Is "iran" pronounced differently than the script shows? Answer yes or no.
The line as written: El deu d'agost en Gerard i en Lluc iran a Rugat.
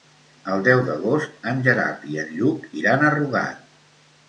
no